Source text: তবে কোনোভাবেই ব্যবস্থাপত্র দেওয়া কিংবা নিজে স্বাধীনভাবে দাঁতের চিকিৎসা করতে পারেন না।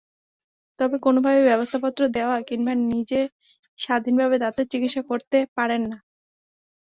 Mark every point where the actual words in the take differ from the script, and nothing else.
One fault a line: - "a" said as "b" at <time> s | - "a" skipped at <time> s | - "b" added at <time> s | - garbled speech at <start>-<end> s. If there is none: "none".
none